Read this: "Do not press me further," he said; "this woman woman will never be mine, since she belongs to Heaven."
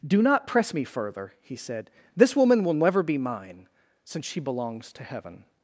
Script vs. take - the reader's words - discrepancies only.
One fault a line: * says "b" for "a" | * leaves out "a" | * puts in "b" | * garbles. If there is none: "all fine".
* leaves out "woman"